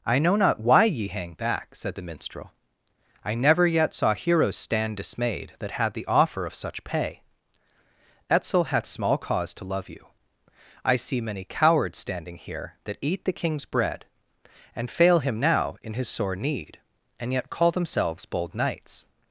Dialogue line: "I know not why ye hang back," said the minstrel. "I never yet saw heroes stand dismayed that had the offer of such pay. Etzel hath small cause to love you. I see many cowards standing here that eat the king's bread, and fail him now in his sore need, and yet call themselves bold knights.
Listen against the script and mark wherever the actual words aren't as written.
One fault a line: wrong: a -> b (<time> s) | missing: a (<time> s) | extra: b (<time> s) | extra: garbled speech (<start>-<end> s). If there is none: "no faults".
no faults